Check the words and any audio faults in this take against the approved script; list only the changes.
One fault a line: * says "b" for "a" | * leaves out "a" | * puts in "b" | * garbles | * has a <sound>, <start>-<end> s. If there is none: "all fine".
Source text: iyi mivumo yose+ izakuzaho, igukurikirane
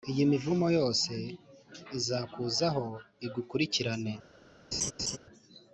* has a laugh, 4.7-5.2 s